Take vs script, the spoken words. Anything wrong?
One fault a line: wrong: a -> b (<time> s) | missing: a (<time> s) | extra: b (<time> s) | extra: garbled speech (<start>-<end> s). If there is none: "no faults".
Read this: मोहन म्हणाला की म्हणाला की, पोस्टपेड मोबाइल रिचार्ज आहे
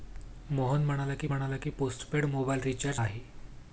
no faults